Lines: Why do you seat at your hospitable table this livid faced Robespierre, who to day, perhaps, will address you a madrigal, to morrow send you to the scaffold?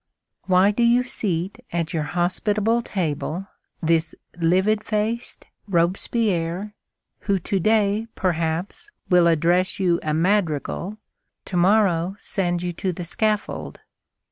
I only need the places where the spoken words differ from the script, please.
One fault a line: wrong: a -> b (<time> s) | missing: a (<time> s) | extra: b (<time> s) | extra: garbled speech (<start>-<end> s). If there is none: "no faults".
no faults